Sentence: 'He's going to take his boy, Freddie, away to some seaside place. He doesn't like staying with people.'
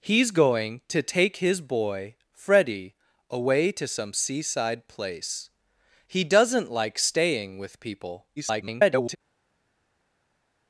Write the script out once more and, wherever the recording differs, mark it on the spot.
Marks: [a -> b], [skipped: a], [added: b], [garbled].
'He's going to take his boy, Freddie, away to some seaside place. He doesn't like staying with people.' [garbled]